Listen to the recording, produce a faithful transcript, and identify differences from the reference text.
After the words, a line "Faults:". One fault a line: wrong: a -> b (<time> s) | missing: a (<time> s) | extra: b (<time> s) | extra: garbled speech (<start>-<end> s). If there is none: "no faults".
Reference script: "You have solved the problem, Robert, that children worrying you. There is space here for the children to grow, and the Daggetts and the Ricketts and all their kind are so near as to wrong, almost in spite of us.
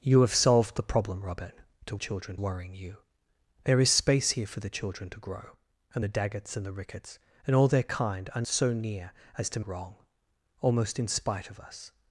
"You have solved the problem, Robert, that children worrying you. There is space here for the children to grow, and the Daggetts and the Ricketts and all their kind are so near as to wrong, almost in spite of us.
Faults:
no faults